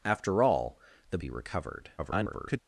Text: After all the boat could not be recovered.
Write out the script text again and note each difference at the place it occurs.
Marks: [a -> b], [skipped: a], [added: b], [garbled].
After all the [skipped: boat could not] be recovered. [garbled]